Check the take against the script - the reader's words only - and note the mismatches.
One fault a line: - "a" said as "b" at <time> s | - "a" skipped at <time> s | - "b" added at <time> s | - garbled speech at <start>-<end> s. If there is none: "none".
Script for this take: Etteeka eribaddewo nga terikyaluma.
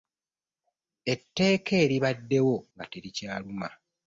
none